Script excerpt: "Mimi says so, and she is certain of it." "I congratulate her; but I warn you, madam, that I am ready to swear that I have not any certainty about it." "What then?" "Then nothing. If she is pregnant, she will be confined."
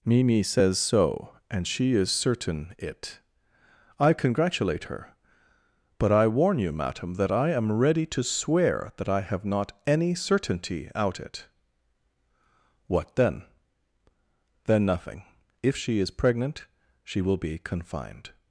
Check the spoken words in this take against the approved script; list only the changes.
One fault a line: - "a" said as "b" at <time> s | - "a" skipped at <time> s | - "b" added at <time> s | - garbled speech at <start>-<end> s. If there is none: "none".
- "of" skipped at 2.7 s
- "about" said as "out" at 10.9 s